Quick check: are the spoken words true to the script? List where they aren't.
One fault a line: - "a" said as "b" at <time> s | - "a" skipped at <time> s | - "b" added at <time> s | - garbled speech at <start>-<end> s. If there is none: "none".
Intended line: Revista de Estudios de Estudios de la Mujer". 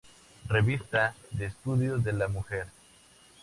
- "Estudios de" skipped at 2.1 s